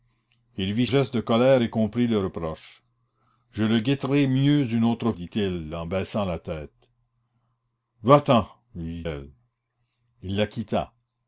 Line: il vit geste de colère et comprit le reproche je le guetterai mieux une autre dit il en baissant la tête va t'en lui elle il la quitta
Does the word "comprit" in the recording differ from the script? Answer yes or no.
no